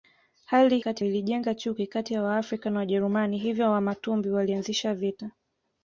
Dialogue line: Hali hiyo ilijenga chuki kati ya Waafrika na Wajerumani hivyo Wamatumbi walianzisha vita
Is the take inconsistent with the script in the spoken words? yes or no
yes